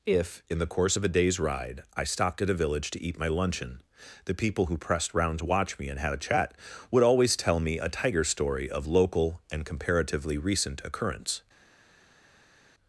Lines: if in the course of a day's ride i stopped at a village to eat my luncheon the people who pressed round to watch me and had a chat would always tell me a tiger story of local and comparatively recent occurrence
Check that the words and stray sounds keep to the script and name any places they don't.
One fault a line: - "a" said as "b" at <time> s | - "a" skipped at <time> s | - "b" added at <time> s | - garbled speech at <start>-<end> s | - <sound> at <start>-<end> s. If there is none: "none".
none